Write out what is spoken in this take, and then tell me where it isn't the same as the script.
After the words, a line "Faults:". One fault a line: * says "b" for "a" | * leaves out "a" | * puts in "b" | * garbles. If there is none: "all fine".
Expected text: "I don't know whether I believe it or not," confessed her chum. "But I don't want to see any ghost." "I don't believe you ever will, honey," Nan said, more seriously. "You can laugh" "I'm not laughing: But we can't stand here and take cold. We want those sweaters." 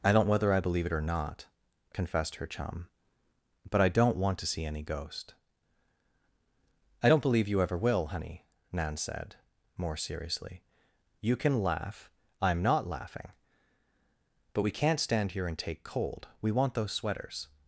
"I don't whether I believe it or not," confessed her chum. "But I don't want to see any ghost." "I don't believe you ever will, honey," Nan said, more seriously. "You can laugh" "I'm not laughing: But we can't stand here and take cold. We want those sweaters."
Faults:
* leaves out "know"